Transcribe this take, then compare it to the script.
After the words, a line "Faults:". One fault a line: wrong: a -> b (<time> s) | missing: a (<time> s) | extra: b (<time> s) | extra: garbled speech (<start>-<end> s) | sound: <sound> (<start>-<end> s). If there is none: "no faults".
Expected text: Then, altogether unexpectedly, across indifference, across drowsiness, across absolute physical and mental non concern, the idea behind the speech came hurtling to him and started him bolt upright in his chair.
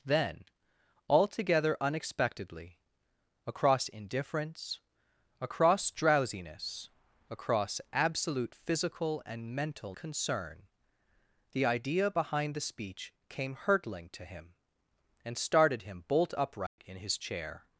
Then, altogether unexpectedly, across indifference, across drowsiness, across absolute physical and mental concern, the idea behind the speech came hurtling to him and started him bolt upright in his chair.
Faults:
missing: non (9.9 s)
sound: dropout (16.7-16.8 s)